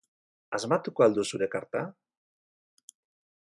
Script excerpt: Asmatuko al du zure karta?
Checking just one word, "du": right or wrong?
right